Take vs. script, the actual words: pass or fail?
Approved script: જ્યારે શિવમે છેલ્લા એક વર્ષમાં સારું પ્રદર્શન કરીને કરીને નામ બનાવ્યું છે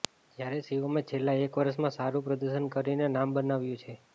fail